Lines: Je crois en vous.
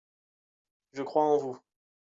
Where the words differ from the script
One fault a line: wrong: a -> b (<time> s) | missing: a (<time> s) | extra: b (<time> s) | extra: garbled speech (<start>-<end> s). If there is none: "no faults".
no faults